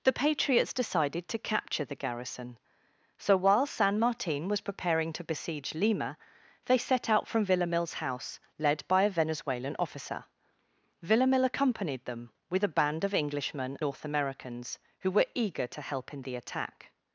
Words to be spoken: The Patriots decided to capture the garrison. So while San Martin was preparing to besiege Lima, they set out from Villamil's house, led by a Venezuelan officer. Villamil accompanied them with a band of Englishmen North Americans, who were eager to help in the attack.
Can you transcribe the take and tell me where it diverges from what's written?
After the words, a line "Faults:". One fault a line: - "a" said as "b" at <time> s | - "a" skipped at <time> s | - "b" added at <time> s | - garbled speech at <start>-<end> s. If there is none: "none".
The Patriots decided to capture the garrison. So while San Martin was preparing to besiege Lima, they set out from Villamil's house, led by a Venezuelan officer. Villamil accompanied them with a band of Englishmen North Americans, who were eager to help in the attack.
Faults:
none